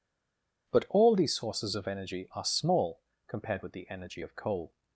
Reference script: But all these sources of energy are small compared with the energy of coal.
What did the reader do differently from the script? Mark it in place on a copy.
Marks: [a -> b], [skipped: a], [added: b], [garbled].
But all these sources of energy are small compared with the energy of coal.